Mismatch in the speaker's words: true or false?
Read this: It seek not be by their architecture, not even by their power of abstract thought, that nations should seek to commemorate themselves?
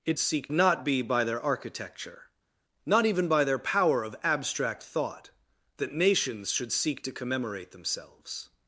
false